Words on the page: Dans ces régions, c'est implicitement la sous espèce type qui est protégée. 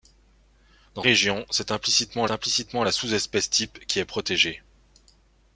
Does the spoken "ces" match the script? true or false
false